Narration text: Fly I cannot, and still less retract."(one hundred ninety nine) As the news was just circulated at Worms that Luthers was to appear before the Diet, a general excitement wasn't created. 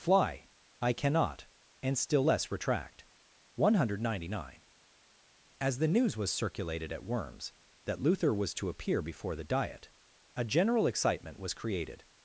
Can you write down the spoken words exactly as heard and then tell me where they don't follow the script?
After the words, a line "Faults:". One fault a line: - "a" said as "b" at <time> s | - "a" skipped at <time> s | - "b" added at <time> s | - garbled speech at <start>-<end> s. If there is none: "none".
Fly I cannot, and still less retract."(one hundred ninety nine) As the news was circulated at Worms that Luther was to appear before the Diet, a general excitement was created.
Faults:
- "just" skipped at 6.3 s
- "Luthers" said as "Luther" at 8.0 s
- "wasn't" said as "was" at 11.4 s